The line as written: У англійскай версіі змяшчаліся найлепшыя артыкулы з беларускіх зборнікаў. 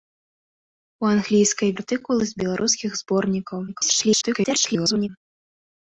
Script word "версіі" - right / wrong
wrong